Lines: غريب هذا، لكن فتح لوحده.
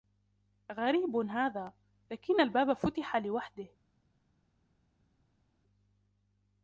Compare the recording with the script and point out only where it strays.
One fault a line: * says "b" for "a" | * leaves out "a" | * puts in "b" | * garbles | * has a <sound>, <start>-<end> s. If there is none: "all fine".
* puts in "الباب"